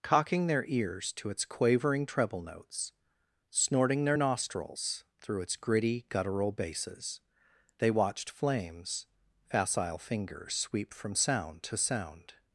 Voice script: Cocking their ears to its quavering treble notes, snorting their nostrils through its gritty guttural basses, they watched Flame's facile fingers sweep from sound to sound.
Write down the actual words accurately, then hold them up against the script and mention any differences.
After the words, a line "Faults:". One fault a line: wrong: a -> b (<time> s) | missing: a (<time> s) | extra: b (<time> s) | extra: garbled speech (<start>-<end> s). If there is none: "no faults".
Cocking their ears to its quavering treble notes, snorting their nostrils through its gritty guttural basses, they watched Flame's facile fingers sweep from sound to sound.
Faults:
no faults